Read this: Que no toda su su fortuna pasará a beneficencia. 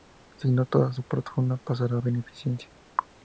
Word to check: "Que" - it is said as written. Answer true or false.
false